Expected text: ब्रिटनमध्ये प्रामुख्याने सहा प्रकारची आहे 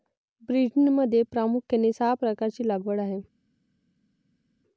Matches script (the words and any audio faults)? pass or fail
fail